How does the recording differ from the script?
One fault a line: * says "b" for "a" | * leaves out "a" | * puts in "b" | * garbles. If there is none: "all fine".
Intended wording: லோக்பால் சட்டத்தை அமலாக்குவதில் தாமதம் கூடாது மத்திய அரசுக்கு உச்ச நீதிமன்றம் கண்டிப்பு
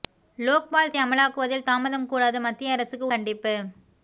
* leaves out "சட்டத்தை"
* leaves out "உச்ச நீதிமன்றம்"